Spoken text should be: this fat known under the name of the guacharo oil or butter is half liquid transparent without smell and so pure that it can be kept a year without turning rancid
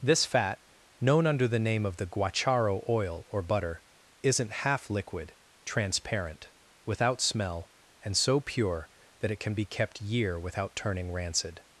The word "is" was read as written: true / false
false